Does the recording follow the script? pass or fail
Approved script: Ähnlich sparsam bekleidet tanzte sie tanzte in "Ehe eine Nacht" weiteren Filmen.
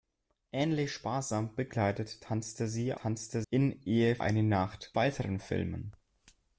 pass